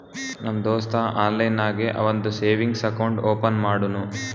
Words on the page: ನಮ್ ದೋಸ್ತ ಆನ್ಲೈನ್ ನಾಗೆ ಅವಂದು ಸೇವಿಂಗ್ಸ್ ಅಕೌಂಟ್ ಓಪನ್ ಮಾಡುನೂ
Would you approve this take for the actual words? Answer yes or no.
yes